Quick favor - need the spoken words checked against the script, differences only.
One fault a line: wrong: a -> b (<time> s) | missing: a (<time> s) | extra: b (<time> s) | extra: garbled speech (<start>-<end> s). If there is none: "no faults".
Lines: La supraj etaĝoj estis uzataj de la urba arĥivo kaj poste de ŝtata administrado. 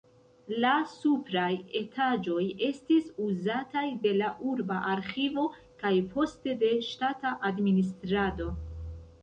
no faults